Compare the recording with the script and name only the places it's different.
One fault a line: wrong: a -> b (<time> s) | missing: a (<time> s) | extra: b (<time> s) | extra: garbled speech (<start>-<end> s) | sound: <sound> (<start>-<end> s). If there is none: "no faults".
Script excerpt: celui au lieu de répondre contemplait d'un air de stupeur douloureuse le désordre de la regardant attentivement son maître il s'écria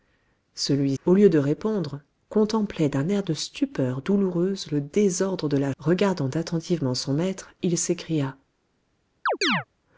sound: chirp (9.3-9.6 s)